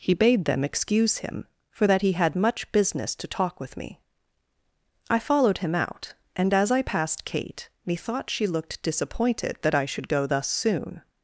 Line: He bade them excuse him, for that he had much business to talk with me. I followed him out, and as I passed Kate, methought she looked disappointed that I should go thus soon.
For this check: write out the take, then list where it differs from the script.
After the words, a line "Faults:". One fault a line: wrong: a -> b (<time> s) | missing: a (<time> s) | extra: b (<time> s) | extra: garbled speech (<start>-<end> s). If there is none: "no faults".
He bade them excuse him, for that he had much business to talk with me. I followed him out, and as I passed Kate, methought she looked disappointed that I should go thus soon.
Faults:
no faults